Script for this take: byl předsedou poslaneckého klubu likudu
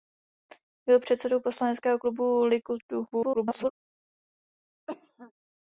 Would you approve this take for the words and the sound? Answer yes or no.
no